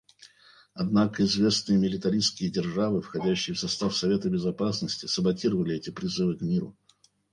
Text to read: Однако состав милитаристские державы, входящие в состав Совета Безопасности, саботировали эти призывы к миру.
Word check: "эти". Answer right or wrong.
right